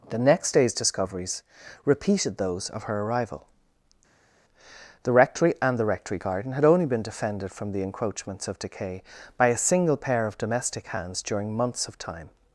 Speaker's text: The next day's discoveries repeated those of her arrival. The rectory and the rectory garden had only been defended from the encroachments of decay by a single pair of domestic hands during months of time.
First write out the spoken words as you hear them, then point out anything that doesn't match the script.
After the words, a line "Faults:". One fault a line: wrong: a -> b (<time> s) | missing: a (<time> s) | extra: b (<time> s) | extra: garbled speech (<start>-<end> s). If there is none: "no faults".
The next day's discoveries repeated those of her arrival. The rectory and the rectory garden had only been defended from the encroachments of decay by a single pair of domestic hands during months of time.
Faults:
no faults